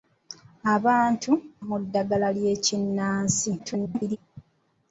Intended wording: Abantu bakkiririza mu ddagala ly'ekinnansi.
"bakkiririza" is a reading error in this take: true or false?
true